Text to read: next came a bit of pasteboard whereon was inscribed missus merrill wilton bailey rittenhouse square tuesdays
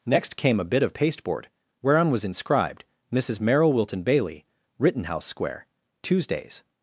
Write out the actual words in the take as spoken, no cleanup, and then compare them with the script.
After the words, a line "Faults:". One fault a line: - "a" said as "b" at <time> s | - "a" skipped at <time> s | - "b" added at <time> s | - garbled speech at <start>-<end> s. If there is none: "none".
next came a bit of pasteboard whereon was inscribed missus merrill wilton bailey rittenhouse square tuesdays
Faults:
none